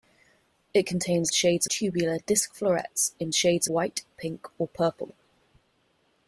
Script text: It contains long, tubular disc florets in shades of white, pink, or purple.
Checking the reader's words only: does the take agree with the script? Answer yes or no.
no